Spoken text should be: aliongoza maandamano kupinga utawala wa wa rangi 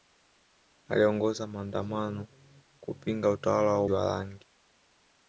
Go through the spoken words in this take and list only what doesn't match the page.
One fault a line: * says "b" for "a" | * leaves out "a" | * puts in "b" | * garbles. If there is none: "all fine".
all fine